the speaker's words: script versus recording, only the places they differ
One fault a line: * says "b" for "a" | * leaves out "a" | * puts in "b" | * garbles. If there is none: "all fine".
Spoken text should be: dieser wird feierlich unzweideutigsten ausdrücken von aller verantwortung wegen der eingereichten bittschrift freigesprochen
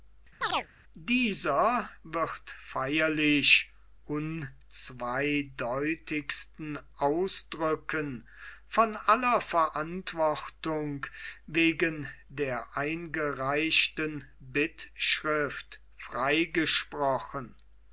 all fine